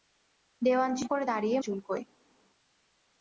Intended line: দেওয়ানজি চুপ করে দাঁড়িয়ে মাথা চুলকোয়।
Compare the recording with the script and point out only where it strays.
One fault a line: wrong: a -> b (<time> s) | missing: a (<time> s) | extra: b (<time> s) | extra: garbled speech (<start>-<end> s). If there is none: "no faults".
missing: চুপ (1.1 s)
missing: মাথা (1.6 s)